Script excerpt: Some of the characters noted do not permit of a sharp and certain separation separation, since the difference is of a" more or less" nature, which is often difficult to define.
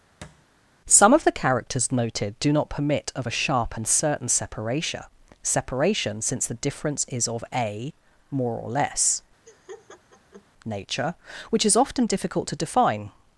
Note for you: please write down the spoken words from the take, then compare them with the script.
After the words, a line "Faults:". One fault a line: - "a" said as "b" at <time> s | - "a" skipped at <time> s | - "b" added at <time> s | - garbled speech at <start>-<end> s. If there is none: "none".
Some of the characters noted do not permit of a sharp and certain separation separation, since the difference is of a" more or less" nature, which is often difficult to define.
Faults:
none